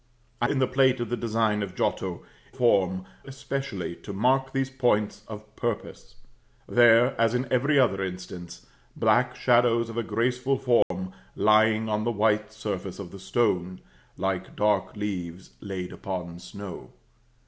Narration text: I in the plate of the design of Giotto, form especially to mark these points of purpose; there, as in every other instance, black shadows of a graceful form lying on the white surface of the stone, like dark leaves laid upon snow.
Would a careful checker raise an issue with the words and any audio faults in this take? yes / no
yes